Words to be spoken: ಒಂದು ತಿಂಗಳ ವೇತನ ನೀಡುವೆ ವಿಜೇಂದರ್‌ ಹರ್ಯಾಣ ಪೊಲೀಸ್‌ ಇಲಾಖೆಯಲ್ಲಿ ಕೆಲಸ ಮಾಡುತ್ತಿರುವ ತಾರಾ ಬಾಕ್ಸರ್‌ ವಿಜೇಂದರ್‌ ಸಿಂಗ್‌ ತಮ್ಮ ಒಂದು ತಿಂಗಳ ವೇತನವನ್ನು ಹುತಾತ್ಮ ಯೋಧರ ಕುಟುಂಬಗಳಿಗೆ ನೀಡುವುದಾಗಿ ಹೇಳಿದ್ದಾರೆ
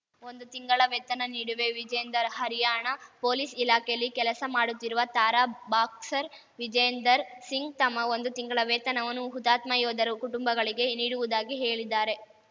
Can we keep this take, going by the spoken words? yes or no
yes